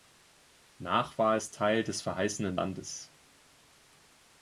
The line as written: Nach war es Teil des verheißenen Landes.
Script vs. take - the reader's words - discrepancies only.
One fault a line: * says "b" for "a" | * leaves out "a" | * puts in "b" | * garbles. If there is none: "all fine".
all fine